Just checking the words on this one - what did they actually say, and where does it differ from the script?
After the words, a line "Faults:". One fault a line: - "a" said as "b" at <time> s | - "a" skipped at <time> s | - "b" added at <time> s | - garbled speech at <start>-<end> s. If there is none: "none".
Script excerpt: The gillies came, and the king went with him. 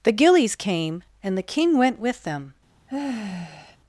The gillies came, and the king went with them.
Faults:
- "him" said as "them" at 2.2 s